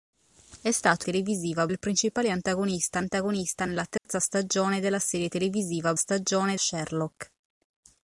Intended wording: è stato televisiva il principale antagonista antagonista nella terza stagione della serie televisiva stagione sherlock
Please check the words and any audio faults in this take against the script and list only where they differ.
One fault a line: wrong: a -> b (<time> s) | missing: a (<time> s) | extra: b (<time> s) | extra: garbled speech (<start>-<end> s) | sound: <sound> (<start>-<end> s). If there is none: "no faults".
sound: dropout (4.0-4.1 s)